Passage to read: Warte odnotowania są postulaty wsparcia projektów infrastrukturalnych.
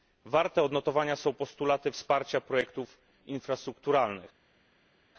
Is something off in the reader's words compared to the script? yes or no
no